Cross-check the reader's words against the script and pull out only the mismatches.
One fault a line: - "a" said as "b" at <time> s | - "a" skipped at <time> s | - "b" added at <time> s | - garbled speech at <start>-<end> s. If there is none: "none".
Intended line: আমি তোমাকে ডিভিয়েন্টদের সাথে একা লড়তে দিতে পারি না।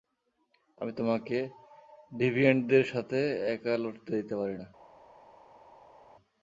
none